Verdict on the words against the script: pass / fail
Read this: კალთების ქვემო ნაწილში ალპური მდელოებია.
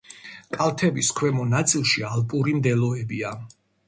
pass